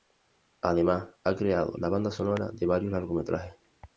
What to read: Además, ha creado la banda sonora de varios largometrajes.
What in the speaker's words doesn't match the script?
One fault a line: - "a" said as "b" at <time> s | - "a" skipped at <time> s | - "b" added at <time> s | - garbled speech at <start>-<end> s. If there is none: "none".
none